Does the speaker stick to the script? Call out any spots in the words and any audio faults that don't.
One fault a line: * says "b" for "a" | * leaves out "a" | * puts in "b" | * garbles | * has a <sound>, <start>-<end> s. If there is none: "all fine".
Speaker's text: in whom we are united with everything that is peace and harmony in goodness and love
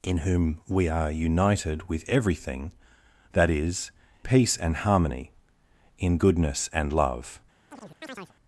* has a chirp, 7.7-8.3 s